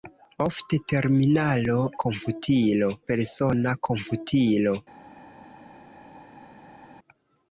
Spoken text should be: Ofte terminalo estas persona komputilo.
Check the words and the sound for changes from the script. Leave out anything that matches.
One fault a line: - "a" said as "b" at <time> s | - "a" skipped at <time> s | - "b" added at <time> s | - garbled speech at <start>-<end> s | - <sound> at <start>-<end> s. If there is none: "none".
- "estas" said as "komputilo" at 2.1 s